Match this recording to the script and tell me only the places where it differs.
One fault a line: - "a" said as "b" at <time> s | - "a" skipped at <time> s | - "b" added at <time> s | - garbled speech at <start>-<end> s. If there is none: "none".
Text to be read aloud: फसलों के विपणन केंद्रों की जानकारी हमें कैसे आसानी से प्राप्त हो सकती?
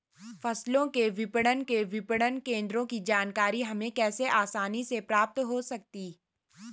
- "के विपणन" added at 1.6 s